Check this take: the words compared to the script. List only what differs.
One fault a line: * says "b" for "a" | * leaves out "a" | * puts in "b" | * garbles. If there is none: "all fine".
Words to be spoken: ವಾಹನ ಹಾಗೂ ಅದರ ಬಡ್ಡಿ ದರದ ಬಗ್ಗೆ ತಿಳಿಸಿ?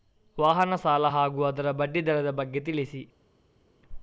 * puts in "ಸಾಲ"